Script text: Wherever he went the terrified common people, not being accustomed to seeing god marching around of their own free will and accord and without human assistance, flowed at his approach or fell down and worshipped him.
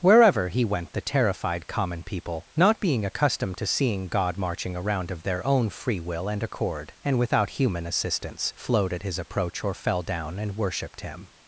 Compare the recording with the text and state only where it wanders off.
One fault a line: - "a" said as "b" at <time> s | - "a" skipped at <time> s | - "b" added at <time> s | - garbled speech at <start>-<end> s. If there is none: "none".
none